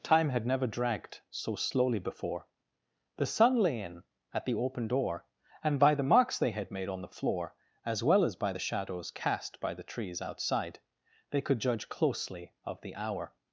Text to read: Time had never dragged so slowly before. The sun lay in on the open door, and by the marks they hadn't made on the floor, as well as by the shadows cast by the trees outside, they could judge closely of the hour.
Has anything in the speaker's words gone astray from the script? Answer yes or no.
yes